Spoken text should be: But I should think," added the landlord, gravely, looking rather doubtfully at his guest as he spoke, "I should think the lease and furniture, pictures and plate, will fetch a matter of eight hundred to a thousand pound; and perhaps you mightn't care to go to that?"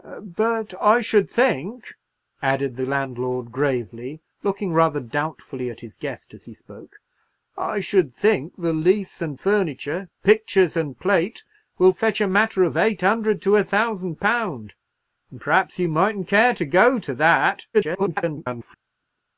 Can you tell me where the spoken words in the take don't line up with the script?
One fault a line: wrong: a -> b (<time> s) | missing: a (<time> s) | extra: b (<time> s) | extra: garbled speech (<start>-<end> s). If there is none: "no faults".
extra: garbled speech (17.7-18.8 s)